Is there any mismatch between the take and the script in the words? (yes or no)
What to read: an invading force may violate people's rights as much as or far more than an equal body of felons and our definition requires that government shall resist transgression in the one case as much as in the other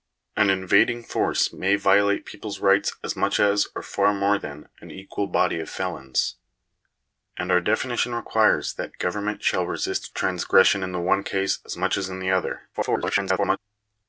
yes